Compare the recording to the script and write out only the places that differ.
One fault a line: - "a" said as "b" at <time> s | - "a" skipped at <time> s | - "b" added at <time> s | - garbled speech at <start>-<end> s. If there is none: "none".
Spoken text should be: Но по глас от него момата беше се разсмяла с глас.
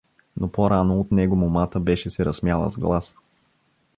- "глас" said as "рано" at 0.7 s